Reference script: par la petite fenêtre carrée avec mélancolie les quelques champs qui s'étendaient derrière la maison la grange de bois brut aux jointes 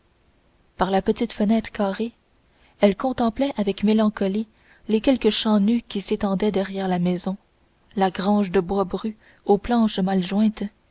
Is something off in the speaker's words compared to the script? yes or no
yes